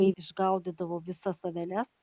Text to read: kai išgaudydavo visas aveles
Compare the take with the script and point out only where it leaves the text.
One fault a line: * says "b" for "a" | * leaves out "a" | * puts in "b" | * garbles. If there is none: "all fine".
all fine